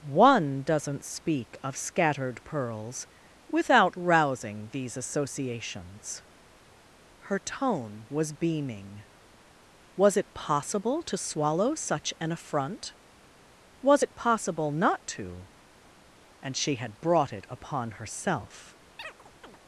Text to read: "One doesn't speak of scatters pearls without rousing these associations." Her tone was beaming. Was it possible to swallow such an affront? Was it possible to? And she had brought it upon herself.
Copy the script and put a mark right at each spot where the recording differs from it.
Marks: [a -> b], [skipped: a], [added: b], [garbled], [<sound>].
"One doesn't speak of [scatters -> scattered] pearls without rousing these associations." Her tone was beaming. Was it possible to swallow such an affront? Was it possible [added: not] to? And she had brought it upon herself. [chirp]